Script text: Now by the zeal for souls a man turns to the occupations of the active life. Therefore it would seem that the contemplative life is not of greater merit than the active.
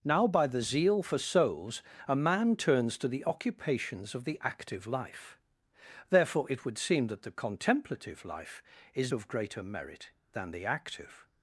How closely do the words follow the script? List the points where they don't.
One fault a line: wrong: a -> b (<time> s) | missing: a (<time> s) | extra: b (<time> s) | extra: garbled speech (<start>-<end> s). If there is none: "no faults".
missing: not (9.1 s)